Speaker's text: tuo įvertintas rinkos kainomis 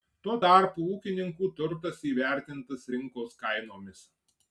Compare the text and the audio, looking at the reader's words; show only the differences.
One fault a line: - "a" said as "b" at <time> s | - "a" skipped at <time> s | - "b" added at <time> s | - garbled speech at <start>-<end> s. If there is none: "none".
- "tarpu ūkininkų turtas" added at 0.4 s